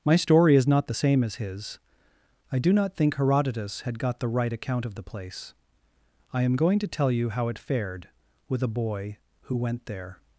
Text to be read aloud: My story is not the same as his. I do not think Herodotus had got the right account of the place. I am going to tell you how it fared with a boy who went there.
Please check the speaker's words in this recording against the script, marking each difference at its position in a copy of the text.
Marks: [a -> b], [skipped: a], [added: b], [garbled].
My story is not the same as his. I do not think Herodotus had got the right account of the place. I am going to tell you how it fared with a boy who went there.